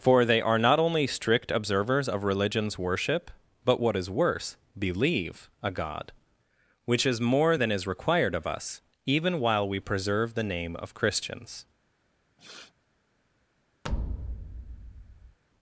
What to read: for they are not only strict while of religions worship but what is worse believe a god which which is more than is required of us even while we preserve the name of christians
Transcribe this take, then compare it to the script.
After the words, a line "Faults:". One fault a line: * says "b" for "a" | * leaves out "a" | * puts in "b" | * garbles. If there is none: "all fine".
for they are not only strict observers of religions worship but what is worse believe a god which is more than is required of us even while we preserve the name of christians
Faults:
* says "observers" for "while"
* leaves out "which"